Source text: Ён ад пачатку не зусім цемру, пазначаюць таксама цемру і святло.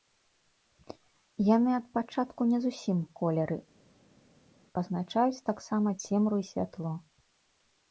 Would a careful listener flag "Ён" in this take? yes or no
yes